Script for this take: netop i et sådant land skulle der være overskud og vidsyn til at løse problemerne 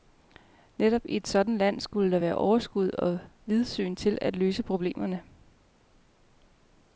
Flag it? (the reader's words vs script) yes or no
no